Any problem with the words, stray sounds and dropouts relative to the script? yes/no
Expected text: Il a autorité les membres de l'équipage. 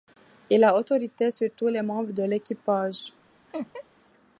yes